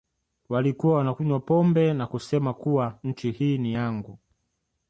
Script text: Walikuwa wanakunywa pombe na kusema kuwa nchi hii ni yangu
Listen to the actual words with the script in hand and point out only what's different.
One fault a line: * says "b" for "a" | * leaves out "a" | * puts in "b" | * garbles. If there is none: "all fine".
all fine